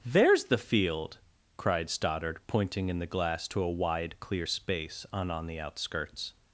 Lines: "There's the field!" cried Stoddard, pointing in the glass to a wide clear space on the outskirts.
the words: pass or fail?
fail